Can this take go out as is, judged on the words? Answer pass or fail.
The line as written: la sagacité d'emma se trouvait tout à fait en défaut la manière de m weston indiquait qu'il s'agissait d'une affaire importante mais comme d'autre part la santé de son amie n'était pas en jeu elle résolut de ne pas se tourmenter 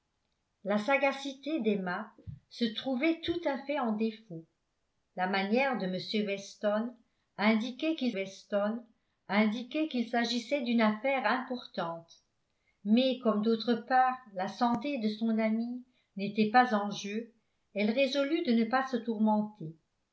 fail